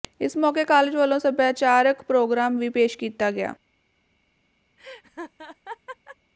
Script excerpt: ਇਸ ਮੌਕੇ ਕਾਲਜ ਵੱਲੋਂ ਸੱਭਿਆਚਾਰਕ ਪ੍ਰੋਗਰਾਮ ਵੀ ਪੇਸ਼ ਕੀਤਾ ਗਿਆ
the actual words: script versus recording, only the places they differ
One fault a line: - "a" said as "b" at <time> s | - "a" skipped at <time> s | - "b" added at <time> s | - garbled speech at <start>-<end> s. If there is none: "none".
none